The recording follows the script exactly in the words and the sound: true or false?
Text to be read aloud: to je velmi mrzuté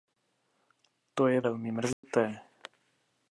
false